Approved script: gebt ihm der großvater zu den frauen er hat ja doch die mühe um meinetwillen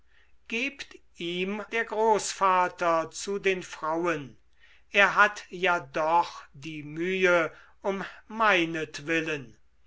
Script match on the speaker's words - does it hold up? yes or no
yes